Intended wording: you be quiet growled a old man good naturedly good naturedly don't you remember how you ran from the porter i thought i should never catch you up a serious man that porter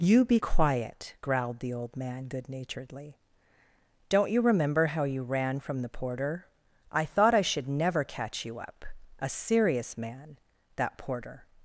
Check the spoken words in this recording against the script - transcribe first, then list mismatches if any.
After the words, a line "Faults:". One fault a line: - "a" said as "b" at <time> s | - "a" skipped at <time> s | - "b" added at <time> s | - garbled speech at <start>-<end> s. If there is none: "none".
you be quiet growled the old man good naturedly don't you remember how you ran from the porter i thought i should never catch you up a serious man that porter
Faults:
- "a" said as "the" at 1.6 s
- "good naturedly" skipped at 3.2 s